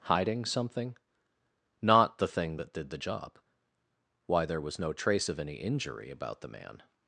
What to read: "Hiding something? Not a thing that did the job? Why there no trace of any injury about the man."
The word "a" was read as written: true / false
false